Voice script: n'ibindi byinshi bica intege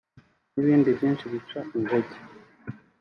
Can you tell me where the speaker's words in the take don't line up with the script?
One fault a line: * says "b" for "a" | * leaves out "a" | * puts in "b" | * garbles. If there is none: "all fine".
all fine